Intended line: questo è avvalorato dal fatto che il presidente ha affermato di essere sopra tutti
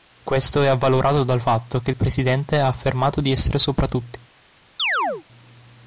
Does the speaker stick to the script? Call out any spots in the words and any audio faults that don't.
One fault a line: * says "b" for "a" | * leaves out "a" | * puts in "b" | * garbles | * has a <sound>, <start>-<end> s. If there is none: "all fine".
* has a chirp, 4.8-5.2 s